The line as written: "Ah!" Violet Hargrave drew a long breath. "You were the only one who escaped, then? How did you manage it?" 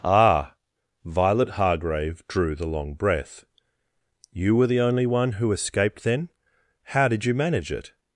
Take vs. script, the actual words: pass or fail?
fail